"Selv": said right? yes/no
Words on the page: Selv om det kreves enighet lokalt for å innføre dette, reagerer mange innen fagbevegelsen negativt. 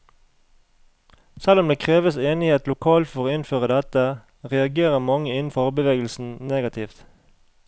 yes